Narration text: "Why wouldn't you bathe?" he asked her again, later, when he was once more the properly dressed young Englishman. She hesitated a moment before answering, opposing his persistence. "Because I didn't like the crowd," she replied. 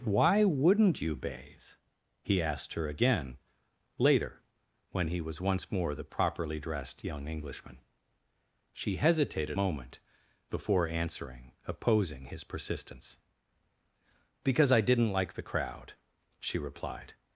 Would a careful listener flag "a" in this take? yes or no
yes